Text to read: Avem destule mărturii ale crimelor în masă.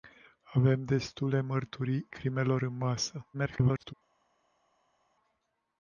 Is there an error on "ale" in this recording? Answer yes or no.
yes